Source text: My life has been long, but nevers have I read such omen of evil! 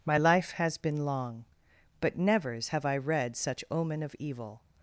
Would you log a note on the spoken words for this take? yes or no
no